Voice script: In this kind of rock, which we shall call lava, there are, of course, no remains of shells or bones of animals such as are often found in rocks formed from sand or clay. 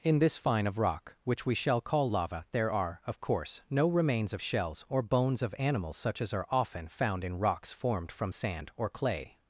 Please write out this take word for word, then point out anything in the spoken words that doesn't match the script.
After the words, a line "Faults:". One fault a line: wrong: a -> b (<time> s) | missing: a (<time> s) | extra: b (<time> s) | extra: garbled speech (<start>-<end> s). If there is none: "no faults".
In this fine of rock, which we shall call lava, there are, of course, no remains of shells or bones of animals such as are often found in rocks formed from sand or clay.
Faults:
wrong: kind -> fine (0.3 s)